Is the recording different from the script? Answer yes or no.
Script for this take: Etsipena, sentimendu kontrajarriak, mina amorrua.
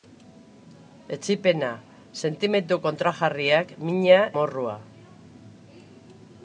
no